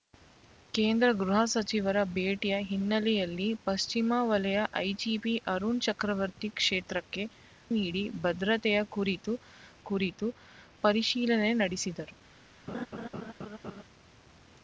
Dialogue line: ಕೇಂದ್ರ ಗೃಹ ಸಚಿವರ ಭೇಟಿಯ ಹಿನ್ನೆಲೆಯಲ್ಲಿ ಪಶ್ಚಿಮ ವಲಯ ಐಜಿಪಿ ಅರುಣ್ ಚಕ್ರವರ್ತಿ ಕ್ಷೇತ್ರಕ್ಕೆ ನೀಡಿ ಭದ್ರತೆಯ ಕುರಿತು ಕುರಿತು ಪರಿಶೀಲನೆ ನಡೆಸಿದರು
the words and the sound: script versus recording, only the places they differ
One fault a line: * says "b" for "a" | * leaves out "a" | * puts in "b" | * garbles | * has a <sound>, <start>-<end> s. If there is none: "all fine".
* has a laugh, 12.7-13.8 s